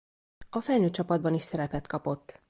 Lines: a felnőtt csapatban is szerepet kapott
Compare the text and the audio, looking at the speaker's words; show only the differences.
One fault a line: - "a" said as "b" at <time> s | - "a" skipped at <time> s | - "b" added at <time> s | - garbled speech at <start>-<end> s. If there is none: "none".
none